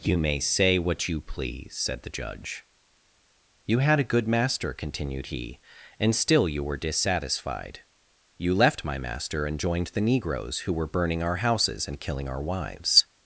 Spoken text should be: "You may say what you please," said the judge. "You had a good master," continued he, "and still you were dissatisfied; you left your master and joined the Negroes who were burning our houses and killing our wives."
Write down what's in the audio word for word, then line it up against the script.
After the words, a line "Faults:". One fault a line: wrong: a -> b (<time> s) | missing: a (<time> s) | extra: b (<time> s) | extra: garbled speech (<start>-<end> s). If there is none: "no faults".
"You may say what you please," said the judge. "You had a good master," continued he, "and still you were dissatisfied; you left my master and joined the Negroes who were burning our houses and killing our wives."
Faults:
wrong: your -> my (8.8 s)